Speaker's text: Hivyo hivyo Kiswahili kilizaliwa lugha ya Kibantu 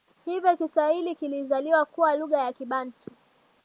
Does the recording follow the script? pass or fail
fail